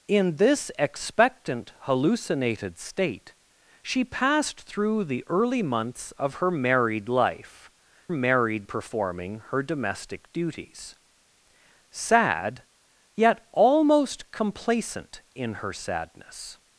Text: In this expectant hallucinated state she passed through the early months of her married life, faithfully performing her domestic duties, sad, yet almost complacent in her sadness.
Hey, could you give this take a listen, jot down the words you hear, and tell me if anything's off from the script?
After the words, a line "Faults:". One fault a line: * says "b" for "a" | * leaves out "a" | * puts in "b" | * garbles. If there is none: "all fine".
In this expectant hallucinated state she passed through the early months of her married life, married performing her domestic duties, sad, yet almost complacent in her sadness.
Faults:
* says "married" for "faithfully"